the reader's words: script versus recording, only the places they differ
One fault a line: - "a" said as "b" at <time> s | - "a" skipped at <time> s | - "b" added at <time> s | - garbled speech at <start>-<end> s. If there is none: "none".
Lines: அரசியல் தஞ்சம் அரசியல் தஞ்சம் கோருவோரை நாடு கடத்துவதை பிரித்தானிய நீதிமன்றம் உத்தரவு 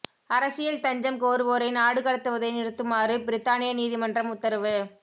- "அரசியல் தஞ்சம்" skipped at 1.2 s
- "நிறுத்துமாறு" added at 2.6 s